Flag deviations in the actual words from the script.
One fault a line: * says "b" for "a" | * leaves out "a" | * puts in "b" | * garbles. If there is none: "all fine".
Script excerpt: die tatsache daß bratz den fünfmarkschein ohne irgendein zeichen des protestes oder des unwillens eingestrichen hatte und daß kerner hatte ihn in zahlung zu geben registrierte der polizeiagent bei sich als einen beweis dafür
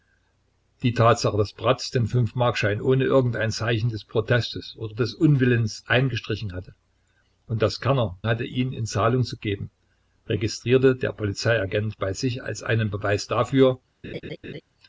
all fine